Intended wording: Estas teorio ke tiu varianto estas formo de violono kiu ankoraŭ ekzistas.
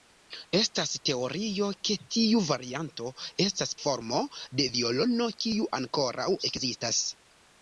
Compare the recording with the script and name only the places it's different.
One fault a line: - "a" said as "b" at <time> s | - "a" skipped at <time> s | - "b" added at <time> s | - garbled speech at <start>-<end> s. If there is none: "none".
none